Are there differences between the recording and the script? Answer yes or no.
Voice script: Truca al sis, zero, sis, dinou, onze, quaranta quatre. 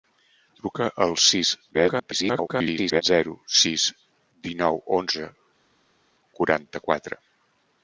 yes